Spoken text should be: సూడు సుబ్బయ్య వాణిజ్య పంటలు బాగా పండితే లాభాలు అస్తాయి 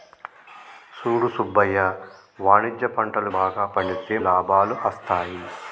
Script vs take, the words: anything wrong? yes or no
no